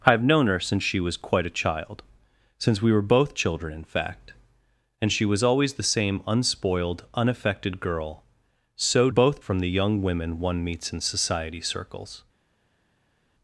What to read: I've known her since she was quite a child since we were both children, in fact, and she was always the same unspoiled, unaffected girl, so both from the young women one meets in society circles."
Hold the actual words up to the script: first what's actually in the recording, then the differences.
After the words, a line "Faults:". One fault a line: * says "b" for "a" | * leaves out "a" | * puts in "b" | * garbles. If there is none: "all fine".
I've known her since she was quite a child since we were both children, in fact, and she was always the same unspoiled, unaffected girl, so both from the young women one meets in society circles."
Faults:
all fine